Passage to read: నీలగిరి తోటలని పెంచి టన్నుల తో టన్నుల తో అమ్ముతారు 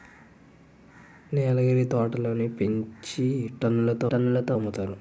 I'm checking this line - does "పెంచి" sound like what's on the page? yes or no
yes